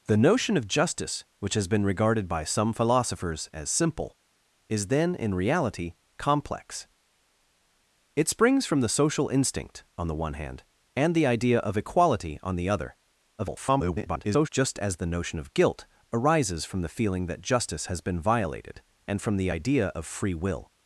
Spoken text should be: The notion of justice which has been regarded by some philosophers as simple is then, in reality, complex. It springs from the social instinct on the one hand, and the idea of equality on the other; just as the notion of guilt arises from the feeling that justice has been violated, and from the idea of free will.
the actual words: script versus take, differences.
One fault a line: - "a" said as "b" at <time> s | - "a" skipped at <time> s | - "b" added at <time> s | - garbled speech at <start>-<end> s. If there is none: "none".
- garbled speech at 13.4-14.5 s